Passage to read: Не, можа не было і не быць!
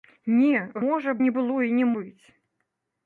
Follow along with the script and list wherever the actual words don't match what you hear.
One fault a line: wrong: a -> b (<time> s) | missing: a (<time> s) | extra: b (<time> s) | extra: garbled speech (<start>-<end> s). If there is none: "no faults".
no faults